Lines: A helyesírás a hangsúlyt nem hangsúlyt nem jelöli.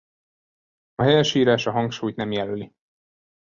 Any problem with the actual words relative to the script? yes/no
yes